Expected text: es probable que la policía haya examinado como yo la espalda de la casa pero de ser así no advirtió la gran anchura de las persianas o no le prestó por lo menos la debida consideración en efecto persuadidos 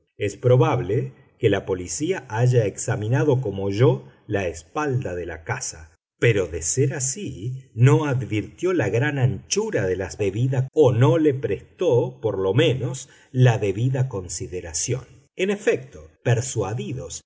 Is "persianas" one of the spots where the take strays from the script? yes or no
yes